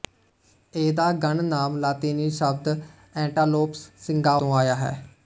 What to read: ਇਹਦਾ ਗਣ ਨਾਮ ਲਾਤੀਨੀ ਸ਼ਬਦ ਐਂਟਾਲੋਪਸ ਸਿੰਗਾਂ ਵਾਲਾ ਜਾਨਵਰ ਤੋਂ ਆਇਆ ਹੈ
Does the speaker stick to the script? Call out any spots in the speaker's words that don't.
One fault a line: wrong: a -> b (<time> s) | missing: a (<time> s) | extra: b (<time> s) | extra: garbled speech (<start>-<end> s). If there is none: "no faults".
missing: ਵਾਲਾ ਜਾਨਵਰ (4.4 s)